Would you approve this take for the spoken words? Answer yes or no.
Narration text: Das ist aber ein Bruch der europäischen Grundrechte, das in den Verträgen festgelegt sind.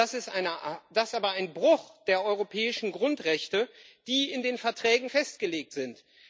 no